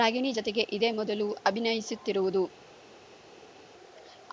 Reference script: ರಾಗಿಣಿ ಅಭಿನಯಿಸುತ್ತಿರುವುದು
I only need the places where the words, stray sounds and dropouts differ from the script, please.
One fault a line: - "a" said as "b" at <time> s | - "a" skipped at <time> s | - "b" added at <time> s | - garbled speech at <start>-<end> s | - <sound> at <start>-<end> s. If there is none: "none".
- "ಜತೆಗೆ ಇದೇ ಮೊದಲು" added at 0.3 s